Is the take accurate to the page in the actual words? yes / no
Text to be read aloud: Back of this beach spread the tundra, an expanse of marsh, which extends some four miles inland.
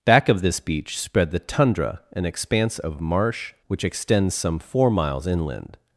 yes